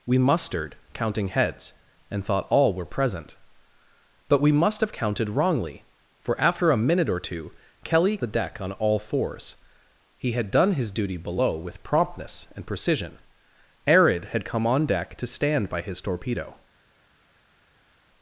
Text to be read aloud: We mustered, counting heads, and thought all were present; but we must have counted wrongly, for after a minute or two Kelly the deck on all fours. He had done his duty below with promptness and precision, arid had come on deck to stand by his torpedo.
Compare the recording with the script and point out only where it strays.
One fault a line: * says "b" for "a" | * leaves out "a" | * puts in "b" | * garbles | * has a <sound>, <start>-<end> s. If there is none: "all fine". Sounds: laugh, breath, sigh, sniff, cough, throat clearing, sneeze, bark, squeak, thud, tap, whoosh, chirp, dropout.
all fine